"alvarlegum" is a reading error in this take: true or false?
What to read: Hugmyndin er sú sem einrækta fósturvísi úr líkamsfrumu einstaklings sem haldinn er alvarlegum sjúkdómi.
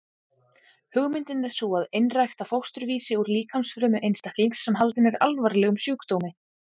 false